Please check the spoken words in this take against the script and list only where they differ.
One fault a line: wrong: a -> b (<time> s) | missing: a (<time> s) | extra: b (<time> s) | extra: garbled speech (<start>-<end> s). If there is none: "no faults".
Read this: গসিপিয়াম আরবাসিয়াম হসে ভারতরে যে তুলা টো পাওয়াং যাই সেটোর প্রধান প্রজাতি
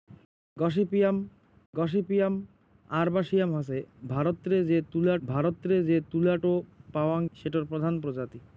extra: গসিপিয়াম (1.7 s)
extra: ভারতরে যে তুলা (5.3 s)
missing: যাই (7.2 s)